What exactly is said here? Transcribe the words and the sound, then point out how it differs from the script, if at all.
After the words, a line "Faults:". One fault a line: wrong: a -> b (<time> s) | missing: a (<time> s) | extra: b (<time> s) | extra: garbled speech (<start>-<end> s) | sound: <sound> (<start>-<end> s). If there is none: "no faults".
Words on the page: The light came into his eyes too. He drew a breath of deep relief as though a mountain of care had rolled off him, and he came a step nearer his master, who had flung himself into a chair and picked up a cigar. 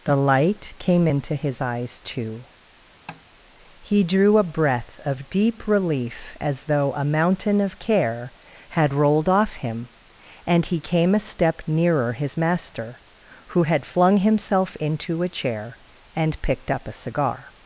The light came into his eyes too. He drew a breath of deep relief as though a mountain of care had rolled off him, and he came a step nearer his master, who had flung himself into a chair and picked up a cigar.
Faults:
sound: tap (3.1-3.2 s)